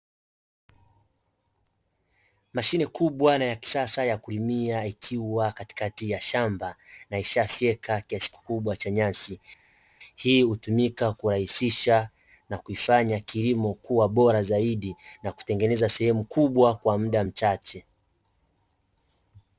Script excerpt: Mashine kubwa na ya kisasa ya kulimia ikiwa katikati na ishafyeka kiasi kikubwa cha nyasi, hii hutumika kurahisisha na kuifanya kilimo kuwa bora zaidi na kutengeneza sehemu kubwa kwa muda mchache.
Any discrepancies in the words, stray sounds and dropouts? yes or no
yes